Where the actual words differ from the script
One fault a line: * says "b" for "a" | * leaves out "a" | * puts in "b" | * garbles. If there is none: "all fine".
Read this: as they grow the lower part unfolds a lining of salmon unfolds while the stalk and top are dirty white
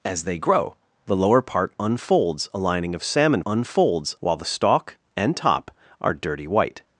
all fine